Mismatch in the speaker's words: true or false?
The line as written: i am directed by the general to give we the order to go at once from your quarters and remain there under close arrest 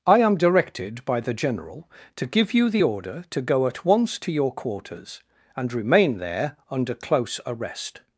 true